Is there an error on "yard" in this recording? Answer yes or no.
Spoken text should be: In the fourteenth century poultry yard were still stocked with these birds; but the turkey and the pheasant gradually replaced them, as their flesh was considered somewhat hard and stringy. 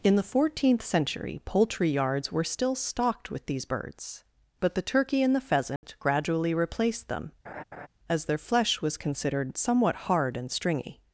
yes